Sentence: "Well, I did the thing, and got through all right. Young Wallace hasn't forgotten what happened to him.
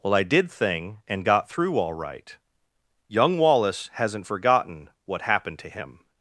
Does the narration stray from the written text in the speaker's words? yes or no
yes